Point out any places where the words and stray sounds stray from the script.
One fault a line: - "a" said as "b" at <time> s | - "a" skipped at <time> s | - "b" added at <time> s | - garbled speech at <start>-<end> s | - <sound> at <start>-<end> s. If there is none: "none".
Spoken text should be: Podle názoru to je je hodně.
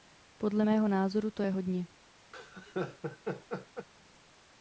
- "mého" added at 0.6 s
- "je" skipped at 1.5 s
- laugh at 2.3-3.9 s